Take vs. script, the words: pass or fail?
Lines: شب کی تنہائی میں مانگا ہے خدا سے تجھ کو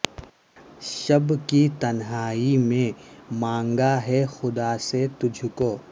pass